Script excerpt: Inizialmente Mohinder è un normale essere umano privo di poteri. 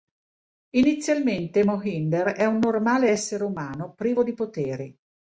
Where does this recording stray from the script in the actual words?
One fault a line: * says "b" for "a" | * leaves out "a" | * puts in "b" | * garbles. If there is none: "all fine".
all fine